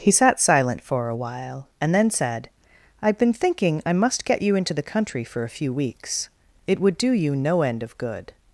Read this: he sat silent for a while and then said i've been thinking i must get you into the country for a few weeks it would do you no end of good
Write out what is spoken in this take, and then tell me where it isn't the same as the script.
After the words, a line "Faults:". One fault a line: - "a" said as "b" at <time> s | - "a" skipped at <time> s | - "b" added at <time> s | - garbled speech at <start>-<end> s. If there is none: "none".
he sat silent for a while and then said i've been thinking i must get you into the country for a few weeks it would do you no end of good
Faults:
none